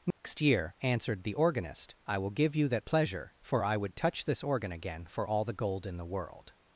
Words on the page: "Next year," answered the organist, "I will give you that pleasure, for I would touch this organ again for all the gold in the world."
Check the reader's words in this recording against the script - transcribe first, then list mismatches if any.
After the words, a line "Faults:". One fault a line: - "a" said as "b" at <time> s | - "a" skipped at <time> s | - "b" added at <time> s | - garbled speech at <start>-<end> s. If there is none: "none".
"Next year," answered the organist, "I will give you that pleasure, for I would touch this organ again for all the gold in the world."
Faults:
none